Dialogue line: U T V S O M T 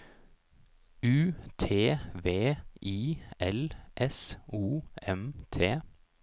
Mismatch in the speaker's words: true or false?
true